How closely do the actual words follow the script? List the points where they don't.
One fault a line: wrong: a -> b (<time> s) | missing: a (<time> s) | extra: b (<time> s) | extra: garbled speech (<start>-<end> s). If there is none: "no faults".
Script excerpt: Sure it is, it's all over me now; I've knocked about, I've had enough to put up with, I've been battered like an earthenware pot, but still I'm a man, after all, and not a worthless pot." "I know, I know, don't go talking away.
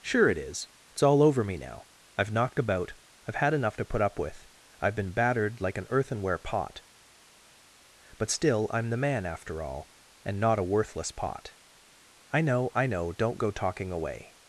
wrong: a -> the (8.9 s)